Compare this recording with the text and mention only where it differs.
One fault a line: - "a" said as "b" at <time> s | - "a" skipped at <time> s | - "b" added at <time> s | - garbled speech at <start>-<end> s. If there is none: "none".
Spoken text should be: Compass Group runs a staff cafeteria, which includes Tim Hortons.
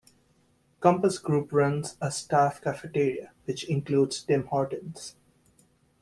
none